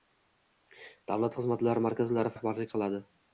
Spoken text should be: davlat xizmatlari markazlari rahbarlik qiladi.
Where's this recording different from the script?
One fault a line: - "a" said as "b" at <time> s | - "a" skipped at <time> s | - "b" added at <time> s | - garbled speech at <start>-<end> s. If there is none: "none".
none